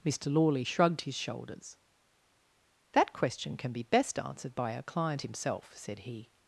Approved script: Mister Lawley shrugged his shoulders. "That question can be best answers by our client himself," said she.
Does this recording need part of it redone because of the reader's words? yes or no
yes